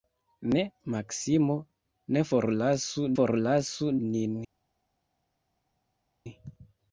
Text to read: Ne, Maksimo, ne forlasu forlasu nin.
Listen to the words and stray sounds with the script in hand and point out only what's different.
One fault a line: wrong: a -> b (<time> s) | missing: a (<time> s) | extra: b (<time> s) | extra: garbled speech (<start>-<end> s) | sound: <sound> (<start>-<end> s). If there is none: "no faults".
no faults